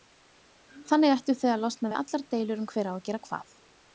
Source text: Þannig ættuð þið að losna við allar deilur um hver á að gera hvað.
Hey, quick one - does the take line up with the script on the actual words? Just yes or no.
yes